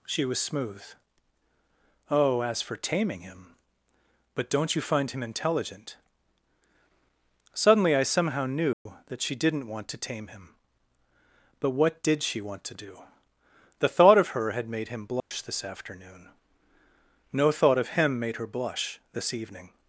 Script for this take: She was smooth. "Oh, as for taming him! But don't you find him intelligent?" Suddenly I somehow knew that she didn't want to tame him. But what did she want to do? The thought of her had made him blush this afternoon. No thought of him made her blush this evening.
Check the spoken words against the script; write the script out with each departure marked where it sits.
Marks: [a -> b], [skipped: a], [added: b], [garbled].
She was smooth. "Oh, as for taming him! But don't you find him intelligent?" Suddenly I somehow knew that she didn't want to tame him. But what did she want to do? The thought of her had made him blush this afternoon. No thought of him made her blush this evening.